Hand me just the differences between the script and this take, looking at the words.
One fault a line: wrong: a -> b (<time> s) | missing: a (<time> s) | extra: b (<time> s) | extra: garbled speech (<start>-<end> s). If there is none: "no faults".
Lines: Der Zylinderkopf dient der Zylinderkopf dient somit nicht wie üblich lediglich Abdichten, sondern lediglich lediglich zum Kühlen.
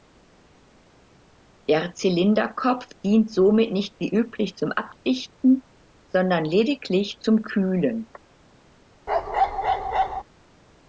missing: der Zylinderkopf dient (3.3 s)
wrong: lediglich -> zum (4.5 s)
missing: lediglich (7.2 s)